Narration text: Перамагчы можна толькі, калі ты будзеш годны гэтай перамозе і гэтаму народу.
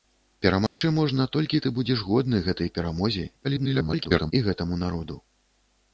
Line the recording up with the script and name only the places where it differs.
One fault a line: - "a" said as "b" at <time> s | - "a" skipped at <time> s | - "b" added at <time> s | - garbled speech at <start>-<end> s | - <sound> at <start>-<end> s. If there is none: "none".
- dropout at 0.7-0.8 s
- "калі" skipped at 1.6 s
- garbled speech at 3.4-4.3 s